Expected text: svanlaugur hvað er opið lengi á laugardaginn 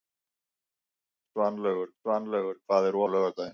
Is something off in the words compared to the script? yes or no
yes